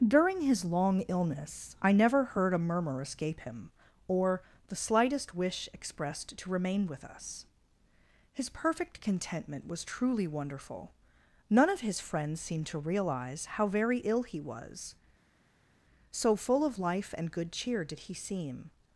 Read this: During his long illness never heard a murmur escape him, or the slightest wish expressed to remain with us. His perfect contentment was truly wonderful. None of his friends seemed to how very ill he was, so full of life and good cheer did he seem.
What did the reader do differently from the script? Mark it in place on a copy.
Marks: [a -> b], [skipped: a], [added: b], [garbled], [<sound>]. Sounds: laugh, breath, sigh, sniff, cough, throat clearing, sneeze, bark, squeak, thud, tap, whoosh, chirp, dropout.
During his long illness [added: I] never heard a murmur escape him, or the slightest wish expressed to remain with us. His perfect contentment was truly wonderful. None of his friends seemed to [added: realize] how very ill he was, so full of life and good cheer did he seem.